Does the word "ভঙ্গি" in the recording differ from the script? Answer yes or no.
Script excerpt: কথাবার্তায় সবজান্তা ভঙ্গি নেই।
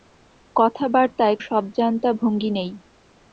no